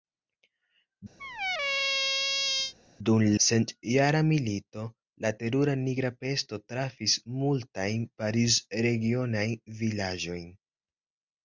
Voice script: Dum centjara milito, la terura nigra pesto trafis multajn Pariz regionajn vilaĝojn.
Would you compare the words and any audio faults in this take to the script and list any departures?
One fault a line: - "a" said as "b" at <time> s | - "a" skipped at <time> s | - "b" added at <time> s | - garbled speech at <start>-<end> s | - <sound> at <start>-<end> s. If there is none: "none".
- squeak at 1.2-2.7 s